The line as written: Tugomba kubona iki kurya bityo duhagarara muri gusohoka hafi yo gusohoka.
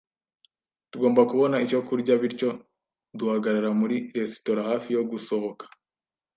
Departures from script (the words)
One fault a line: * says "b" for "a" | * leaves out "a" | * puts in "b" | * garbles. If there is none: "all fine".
* says "icyo" for "iki"
* says "resitora" for "gusohoka"